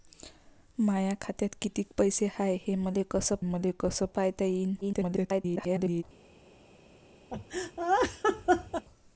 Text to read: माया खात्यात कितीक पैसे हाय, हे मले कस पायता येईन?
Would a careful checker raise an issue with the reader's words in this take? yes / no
yes